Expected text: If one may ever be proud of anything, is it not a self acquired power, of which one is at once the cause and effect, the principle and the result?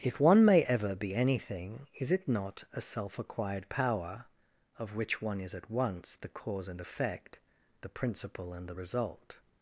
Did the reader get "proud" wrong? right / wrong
wrong